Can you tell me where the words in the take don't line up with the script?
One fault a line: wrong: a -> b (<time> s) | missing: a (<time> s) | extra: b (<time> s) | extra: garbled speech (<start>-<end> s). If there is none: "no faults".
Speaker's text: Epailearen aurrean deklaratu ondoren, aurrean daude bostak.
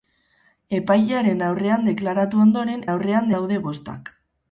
no faults